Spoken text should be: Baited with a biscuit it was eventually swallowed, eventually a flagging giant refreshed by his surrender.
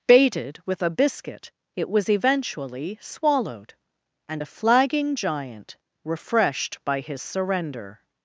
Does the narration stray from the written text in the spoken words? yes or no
yes